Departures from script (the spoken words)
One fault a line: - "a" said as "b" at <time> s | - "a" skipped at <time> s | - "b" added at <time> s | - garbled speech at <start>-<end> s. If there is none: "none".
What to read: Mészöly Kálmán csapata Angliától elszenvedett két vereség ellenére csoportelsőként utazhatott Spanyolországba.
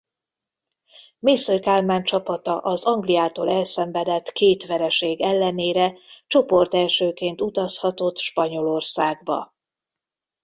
- "az" added at 2.6 s